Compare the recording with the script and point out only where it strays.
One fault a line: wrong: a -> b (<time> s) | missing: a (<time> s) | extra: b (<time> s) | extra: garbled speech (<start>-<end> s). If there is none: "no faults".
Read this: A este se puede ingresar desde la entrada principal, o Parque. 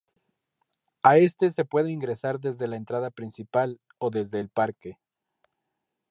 extra: desde el (4.1 s)